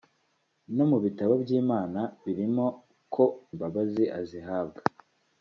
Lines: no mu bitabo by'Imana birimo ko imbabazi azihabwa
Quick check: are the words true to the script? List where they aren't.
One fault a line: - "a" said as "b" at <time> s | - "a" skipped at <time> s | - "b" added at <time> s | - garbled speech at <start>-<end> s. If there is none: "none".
none